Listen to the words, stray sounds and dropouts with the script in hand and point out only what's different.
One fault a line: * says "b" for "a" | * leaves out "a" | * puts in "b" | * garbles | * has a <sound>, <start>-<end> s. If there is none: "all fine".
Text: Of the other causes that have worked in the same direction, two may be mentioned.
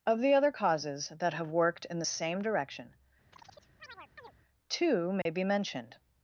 * has a chirp, 3.3-4.3 s
* has a dropout, 5.2-5.3 s